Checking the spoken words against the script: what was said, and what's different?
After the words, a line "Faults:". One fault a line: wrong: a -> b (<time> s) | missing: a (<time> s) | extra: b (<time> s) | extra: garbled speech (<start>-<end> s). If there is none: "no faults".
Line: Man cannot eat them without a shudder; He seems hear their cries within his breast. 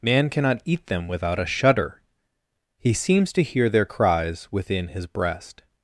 Man cannot eat them without a shudder; He seems to hear their cries within his breast.
Faults:
extra: to (3.3 s)